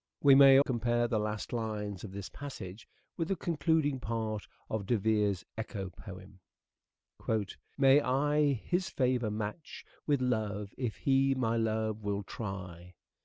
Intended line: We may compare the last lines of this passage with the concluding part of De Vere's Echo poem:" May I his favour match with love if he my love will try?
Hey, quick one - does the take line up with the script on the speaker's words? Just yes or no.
yes